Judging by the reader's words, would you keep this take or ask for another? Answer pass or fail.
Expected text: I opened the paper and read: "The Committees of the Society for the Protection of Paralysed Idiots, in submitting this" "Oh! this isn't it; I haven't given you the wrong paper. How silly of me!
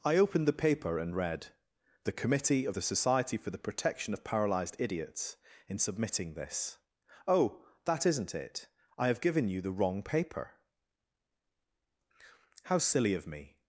fail